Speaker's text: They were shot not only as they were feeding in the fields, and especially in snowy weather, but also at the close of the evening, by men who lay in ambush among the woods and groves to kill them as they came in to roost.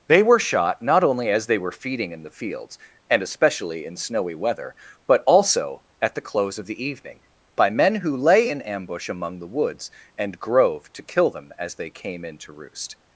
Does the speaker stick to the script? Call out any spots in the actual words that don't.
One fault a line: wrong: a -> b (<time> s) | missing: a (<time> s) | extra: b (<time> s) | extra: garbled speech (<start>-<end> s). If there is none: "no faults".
wrong: groves -> grove (10.4 s)